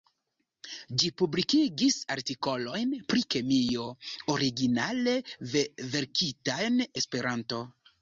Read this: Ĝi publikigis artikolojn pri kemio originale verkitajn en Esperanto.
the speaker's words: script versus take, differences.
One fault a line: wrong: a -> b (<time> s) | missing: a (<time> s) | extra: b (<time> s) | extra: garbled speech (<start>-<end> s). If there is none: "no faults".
missing: en (6.8 s)